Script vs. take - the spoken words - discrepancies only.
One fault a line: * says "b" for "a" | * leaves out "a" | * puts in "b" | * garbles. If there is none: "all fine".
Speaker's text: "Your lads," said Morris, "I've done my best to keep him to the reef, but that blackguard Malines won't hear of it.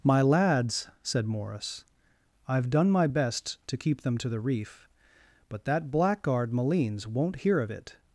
* says "My" for "Your"
* says "them" for "him"